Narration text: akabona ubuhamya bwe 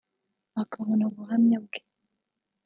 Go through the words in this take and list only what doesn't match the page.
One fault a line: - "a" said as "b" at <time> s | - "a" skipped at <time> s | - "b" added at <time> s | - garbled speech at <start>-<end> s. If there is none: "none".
none